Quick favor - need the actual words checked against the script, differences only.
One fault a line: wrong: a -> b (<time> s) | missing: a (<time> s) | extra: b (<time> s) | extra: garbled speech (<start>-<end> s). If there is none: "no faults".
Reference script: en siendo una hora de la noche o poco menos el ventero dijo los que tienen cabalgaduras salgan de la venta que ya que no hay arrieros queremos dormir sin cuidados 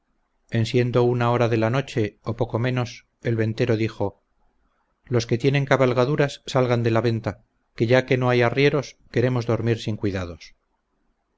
no faults